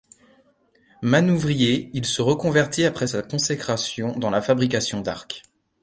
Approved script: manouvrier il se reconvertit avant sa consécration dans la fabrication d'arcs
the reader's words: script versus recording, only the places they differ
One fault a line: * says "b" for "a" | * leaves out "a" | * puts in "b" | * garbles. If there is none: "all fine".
* says "après" for "avant"